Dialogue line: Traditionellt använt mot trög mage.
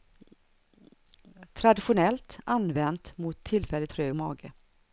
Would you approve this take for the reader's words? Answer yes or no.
no